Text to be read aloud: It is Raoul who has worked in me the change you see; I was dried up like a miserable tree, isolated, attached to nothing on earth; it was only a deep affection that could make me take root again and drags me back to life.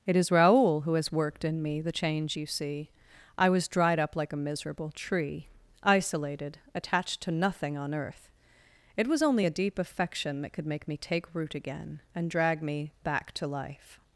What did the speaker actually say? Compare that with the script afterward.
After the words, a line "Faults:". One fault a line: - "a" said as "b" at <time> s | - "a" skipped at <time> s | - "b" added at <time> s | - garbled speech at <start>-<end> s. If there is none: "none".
It is Raoul who has worked in me the change you see; I was dried up like a miserable tree, isolated, attached to nothing on earth; it was only a deep affection that could make me take root again and drag me back to life.
Faults:
- "drags" said as "drag" at 12.3 s